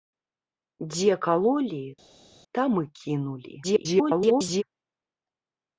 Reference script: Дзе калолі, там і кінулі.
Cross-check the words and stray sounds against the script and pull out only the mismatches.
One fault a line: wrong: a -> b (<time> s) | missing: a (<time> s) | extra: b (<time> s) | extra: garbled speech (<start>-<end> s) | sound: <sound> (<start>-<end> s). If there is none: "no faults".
extra: garbled speech (3.6-4.6 s)